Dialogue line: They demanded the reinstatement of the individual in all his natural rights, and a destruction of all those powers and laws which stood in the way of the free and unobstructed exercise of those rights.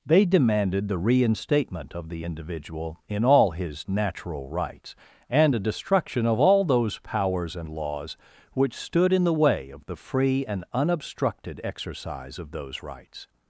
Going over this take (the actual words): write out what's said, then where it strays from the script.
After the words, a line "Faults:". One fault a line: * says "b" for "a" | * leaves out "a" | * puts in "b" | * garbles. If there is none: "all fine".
They demanded the reinstatement of the individual in all his natural rights, and a destruction of all those powers and laws which stood in the way of the free and unobstructed exercise of those rights.
Faults:
all fine